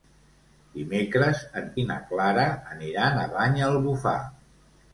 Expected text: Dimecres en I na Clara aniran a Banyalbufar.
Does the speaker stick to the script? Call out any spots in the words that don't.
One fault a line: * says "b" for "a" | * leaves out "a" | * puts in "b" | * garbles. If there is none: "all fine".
all fine